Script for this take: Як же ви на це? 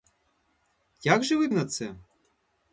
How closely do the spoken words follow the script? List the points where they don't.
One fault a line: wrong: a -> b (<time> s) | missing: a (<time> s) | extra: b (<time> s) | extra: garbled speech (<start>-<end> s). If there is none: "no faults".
no faults